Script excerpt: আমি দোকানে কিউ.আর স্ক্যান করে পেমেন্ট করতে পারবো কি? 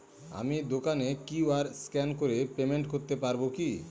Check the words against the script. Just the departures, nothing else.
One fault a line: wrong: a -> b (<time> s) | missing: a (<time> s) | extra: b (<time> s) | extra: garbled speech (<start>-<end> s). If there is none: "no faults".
no faults